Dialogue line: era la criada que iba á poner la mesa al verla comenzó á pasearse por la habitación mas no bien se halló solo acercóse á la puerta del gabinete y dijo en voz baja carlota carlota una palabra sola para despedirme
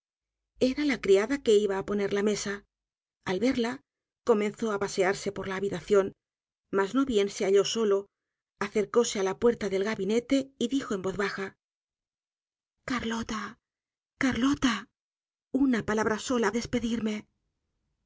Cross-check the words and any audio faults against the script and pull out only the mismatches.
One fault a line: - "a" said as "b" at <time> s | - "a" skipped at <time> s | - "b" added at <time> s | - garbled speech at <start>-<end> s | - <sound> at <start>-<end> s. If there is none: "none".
- "para" skipped at 16.5 s